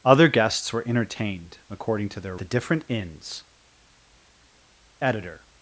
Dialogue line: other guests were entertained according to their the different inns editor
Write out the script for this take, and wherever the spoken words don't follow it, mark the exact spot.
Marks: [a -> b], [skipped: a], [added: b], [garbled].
other guests were entertained according to their the different inns editor